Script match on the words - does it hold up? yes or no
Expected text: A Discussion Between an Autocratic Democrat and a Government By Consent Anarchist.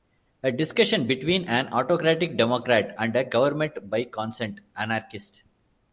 yes